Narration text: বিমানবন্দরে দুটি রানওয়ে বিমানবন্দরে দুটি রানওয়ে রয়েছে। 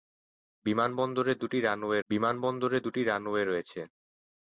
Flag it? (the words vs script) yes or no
no